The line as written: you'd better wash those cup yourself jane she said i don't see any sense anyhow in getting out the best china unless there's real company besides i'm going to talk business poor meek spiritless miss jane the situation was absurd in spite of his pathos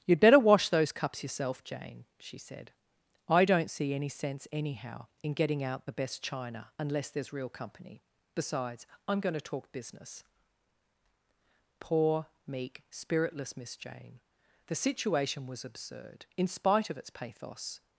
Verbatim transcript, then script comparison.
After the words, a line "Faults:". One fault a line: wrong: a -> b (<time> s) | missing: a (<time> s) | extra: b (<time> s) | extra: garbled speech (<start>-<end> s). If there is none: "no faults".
you'd better wash those cups yourself jane she said i don't see any sense anyhow in getting out the best china unless there's real company besides i'm going to talk business poor meek spiritless miss jane the situation was absurd in spite of its pathos
Faults:
wrong: cup -> cups (0.9 s)
wrong: his -> its (17.0 s)